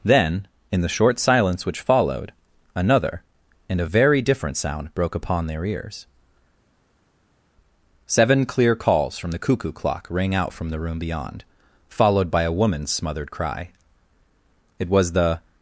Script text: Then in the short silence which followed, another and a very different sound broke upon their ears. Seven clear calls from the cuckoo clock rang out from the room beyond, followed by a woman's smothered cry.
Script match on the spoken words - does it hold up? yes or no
no